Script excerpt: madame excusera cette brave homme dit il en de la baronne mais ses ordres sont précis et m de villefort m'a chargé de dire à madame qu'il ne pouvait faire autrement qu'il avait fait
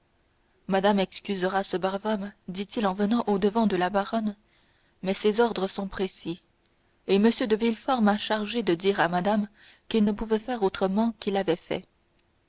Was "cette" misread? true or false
true